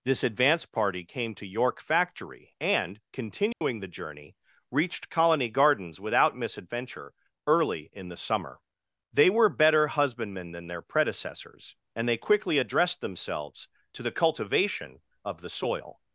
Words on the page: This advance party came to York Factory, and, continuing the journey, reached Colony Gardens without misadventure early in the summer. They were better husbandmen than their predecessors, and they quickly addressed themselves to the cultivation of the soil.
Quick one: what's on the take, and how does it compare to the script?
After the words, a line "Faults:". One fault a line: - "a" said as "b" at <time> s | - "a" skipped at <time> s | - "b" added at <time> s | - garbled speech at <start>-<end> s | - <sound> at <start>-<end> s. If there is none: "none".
This advance party came to York Factory, and, continuing the journey, reached Colony Gardens without misadventure early in the summer. They were better husbandmen than their predecessors, and they quickly addressed themselves to the cultivation of the soil.
Faults:
- dropout at 3.5-3.6 s